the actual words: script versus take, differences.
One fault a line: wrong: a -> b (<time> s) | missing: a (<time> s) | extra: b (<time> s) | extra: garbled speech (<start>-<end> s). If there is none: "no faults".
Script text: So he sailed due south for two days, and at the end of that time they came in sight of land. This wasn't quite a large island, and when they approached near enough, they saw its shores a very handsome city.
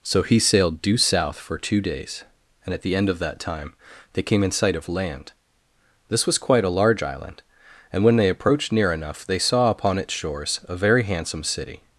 wrong: wasn't -> was (6.3 s)
extra: upon (9.7 s)